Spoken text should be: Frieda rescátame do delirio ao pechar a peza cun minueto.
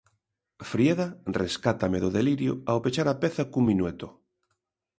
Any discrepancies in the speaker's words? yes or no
no